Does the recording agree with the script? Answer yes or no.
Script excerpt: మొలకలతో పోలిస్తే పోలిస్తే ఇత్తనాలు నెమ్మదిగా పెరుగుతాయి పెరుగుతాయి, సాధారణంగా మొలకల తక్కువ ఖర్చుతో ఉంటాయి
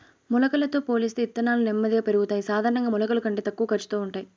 no